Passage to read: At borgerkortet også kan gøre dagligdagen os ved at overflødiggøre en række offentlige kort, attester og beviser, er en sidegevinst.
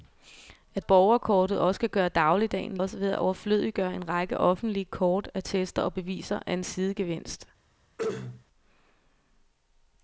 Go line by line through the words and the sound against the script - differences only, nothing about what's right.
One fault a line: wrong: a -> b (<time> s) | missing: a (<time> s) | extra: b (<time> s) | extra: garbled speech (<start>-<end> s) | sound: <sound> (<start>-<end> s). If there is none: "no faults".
sound: throat clearing (8.0-8.4 s)